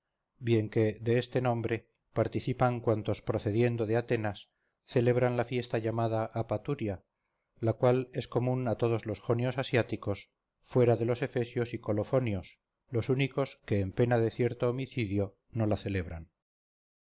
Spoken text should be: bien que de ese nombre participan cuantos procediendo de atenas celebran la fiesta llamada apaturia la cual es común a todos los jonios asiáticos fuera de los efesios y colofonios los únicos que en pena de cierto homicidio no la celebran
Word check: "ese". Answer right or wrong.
wrong